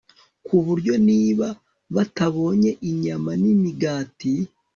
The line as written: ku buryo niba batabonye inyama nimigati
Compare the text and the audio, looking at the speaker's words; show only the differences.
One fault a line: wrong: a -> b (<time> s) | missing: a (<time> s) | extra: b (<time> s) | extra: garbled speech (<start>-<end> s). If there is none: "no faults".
no faults